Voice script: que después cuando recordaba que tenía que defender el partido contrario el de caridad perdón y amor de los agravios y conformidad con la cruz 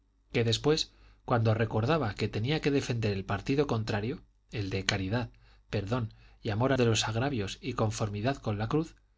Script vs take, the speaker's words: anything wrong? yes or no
no